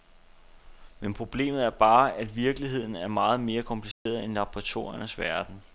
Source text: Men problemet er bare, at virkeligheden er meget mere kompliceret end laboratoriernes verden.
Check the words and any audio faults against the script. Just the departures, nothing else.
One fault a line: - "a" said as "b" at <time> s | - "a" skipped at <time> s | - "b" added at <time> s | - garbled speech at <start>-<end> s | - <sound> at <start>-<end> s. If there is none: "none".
- dropout at 3.9-4.1 s